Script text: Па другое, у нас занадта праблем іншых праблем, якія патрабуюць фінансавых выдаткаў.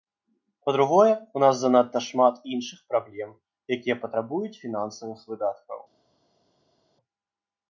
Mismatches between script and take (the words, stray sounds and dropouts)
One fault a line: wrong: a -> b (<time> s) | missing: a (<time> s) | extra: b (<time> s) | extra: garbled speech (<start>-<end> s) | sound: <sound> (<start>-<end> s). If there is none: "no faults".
wrong: праблем -> шмат (2.1 s)